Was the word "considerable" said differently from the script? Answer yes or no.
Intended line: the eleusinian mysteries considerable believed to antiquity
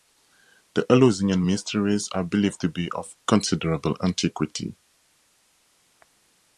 yes